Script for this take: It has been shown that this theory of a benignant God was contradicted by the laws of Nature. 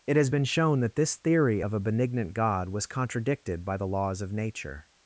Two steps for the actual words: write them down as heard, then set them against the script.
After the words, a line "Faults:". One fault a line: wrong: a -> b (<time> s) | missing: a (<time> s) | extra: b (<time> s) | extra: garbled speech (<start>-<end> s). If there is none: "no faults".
It has been shown that this theory of a benignant God was contradicted by the laws of Nature.
Faults:
no faults